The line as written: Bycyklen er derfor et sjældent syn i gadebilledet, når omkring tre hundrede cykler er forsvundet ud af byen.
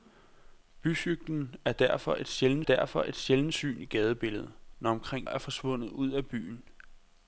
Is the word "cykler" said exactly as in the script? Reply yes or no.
no